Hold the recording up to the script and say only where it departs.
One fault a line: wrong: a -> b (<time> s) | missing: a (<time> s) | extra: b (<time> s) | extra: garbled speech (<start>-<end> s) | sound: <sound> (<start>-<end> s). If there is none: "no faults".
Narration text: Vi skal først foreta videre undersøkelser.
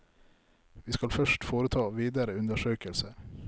no faults